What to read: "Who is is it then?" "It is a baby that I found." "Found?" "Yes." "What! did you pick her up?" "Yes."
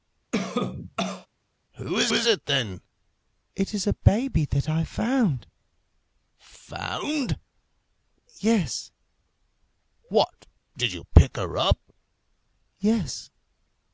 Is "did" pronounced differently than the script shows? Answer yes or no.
no